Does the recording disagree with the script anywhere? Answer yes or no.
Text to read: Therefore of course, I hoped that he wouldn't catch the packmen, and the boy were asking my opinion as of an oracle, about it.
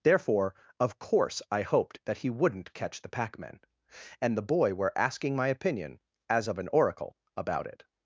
no